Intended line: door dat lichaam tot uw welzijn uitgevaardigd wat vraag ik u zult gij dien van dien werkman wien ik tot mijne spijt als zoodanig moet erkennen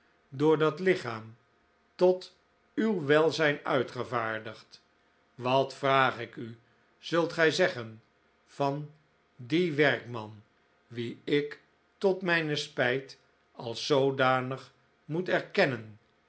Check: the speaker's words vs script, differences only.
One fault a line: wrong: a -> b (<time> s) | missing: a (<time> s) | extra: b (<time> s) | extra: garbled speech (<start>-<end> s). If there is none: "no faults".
wrong: dien -> zeggen (7.5 s)